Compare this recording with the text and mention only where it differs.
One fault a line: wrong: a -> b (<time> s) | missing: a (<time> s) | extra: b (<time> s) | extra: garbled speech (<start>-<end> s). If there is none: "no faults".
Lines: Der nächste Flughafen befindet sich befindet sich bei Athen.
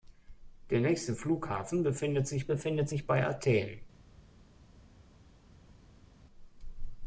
no faults